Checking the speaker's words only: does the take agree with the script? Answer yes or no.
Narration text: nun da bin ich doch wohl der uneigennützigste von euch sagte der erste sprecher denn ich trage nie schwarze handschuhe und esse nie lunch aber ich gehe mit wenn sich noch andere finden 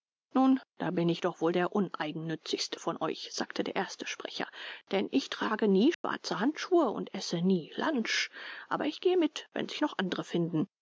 yes